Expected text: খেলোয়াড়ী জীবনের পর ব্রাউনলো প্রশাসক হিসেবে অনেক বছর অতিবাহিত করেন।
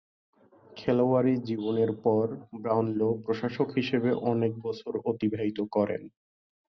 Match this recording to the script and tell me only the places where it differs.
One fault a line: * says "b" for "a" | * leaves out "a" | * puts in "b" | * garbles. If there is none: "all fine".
all fine